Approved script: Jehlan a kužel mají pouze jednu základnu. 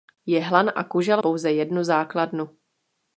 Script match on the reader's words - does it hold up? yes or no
no